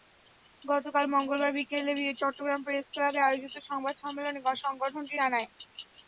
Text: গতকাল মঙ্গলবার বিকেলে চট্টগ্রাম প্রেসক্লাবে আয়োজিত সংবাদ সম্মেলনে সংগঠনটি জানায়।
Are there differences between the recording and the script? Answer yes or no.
no